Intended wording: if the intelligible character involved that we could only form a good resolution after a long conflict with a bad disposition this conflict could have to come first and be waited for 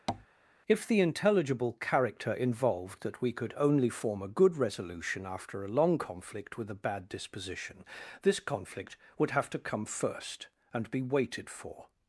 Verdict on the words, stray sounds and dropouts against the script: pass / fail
fail